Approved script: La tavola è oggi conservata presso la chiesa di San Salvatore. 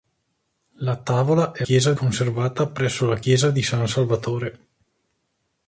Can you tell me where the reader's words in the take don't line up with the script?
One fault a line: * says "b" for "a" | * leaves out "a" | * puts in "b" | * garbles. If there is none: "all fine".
* says "chiesa" for "oggi"